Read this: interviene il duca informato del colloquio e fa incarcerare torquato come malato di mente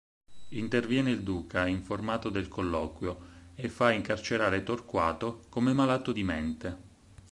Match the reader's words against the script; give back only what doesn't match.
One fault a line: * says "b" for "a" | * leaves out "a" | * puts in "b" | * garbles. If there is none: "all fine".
all fine